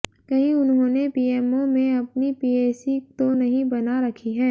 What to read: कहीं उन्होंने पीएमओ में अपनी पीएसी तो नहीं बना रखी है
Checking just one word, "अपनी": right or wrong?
right